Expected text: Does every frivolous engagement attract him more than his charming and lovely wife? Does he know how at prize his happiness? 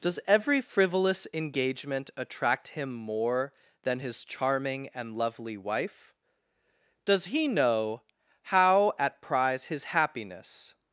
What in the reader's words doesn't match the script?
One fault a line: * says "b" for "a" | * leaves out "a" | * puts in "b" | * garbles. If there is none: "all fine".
all fine